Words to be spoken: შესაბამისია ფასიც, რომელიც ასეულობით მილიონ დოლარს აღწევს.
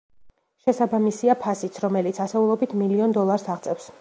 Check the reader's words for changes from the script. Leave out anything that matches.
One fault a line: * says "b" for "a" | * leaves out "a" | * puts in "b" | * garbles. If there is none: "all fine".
all fine